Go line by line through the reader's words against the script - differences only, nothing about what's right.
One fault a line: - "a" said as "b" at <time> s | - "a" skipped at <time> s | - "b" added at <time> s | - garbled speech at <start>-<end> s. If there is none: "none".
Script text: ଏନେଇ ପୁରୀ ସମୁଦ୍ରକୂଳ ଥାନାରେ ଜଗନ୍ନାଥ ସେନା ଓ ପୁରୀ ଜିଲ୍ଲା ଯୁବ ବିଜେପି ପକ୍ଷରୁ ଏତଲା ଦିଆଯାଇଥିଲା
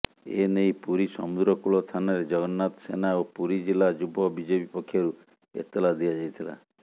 none